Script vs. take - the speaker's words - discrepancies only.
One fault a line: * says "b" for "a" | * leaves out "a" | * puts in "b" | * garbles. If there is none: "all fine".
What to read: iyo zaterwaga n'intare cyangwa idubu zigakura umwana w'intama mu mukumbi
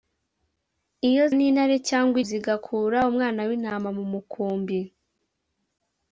* leaves out "zaterwaga"
* leaves out "idubu"